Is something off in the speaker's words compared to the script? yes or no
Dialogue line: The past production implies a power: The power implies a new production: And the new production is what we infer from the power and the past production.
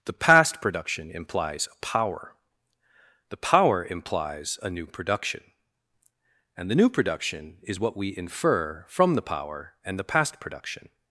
no